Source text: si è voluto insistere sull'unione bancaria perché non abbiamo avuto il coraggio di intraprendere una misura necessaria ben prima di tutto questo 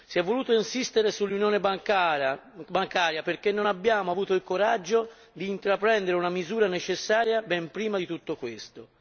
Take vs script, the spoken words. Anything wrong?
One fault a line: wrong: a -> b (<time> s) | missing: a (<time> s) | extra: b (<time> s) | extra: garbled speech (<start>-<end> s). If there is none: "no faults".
no faults